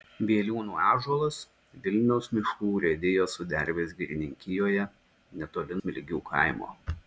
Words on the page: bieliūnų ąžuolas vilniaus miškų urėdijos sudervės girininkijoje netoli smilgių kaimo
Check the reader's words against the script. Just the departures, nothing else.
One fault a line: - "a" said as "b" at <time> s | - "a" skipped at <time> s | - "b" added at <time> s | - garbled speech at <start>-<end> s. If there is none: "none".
none